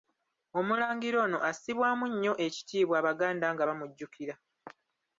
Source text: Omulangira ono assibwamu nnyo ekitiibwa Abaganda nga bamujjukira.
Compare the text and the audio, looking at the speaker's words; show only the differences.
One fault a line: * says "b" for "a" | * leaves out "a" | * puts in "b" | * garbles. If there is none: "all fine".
all fine